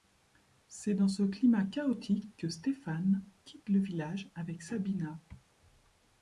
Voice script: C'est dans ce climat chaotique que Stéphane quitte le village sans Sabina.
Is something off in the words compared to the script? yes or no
yes